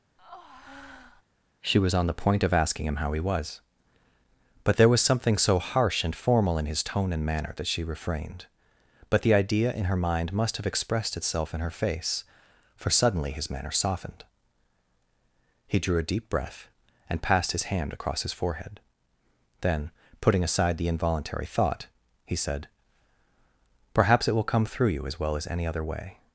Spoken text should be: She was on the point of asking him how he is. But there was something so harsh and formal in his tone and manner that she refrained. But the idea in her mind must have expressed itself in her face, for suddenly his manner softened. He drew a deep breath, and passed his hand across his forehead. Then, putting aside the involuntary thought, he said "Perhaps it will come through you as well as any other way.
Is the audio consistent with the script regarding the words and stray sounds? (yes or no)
no